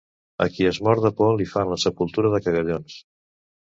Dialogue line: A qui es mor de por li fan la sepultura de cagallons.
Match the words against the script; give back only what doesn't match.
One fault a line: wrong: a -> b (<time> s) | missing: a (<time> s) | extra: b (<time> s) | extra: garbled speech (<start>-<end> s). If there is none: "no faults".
no faults